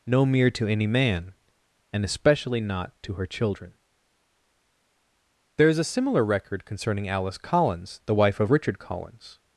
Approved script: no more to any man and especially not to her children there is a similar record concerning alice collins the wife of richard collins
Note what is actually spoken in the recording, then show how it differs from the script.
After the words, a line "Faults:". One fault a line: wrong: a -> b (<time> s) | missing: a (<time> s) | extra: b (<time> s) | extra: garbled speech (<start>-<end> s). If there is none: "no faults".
no mere to any man and especially not to her children there is a similar record concerning alice collins the wife of richard collins
Faults:
wrong: more -> mere (0.2 s)